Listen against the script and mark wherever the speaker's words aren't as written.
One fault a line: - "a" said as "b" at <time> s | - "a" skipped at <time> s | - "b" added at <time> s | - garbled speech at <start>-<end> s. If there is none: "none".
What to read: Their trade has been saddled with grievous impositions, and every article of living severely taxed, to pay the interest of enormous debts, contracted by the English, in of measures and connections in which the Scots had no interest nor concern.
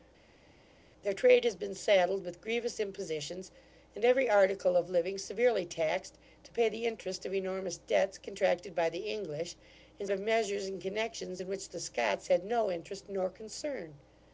none